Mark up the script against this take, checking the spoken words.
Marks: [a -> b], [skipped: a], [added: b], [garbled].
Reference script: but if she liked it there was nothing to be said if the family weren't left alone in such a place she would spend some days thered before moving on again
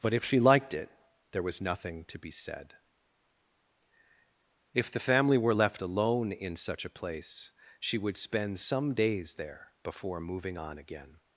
but if she liked it there was nothing to be said if the family [weren't -> were] left alone in such a place she would spend some days [thered -> there] before moving on again